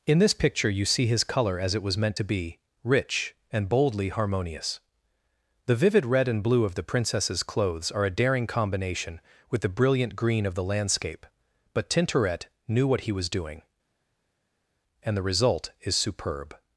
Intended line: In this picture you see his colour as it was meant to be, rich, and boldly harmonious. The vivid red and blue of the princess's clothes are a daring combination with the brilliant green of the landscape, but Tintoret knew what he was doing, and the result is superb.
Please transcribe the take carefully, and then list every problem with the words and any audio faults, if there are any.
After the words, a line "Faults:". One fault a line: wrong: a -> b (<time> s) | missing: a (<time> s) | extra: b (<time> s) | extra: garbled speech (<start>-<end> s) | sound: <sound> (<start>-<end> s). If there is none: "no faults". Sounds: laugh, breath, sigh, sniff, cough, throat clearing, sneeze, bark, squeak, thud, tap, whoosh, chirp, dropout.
In this picture you see his colour as it was meant to be, rich, and boldly harmonious. The vivid red and blue of the princess's clothes are a daring combination with the brilliant green of the landscape, but Tintoret knew what he was doing, and the result is superb.
Faults:
no faults